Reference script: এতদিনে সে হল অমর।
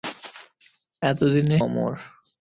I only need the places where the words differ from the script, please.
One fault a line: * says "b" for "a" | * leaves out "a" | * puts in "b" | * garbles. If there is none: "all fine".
* leaves out "সে হল"